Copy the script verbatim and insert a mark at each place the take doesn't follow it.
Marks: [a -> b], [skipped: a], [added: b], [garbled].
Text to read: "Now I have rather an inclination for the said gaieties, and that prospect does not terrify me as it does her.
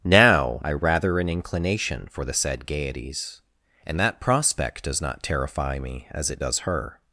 "Now I [skipped: have] rather an inclination for the said gaieties, and that prospect does not terrify me as it does her.